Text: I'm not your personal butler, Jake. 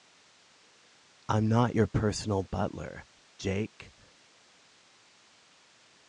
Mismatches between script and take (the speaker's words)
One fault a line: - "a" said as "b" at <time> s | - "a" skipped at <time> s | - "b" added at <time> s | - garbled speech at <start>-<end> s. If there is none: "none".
none